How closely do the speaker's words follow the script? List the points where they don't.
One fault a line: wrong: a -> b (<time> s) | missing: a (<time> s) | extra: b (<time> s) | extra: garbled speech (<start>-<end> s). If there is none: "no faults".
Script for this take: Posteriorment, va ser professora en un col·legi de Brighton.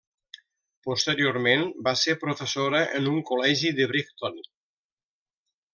no faults